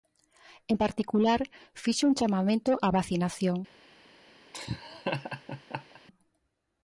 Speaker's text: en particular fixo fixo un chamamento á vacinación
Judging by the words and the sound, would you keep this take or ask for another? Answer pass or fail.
fail